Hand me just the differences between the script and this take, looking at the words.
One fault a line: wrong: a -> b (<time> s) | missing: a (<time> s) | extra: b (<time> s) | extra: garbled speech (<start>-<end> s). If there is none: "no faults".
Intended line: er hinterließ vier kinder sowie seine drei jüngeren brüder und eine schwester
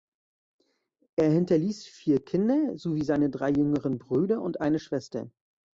no faults